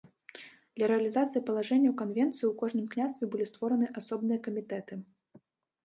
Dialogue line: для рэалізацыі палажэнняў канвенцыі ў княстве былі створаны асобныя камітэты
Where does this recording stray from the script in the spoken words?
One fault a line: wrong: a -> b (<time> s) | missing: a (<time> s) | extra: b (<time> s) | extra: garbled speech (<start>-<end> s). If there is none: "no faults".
extra: кожным (2.6 s)